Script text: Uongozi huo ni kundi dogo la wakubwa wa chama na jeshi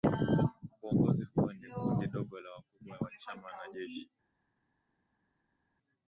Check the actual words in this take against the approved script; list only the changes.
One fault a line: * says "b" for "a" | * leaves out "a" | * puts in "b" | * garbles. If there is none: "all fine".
all fine